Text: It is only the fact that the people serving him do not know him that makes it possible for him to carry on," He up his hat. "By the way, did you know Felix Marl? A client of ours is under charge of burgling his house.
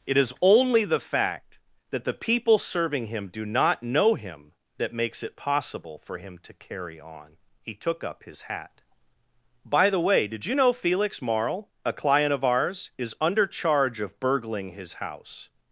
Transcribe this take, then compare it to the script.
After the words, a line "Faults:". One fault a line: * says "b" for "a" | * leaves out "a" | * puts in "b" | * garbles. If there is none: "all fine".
It is only the fact that the people serving him do not know him that makes it possible for him to carry on," He took up his hat. "By the way, did you know Felix Marl? A client of ours is under charge of burgling his house.
Faults:
* puts in "took"